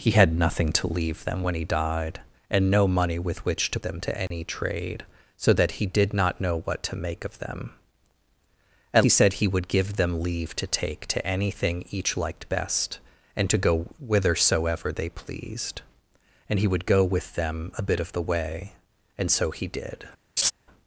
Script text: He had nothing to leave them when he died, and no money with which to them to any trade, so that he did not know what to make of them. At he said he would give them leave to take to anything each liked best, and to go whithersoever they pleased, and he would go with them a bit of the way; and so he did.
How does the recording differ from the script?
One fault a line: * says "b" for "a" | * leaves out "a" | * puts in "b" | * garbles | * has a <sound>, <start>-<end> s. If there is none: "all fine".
* has a dropout, 4.3-4.3 s
* has a laugh, 20.4-20.5 s